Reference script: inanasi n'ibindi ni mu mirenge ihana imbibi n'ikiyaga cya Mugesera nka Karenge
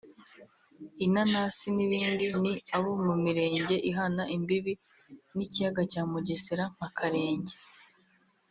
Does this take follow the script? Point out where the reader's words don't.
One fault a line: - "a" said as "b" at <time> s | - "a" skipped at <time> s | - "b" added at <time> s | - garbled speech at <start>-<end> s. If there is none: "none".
- "abo" added at 2.7 s